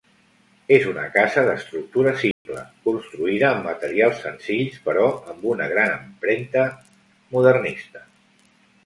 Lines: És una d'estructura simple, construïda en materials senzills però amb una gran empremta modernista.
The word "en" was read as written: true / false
false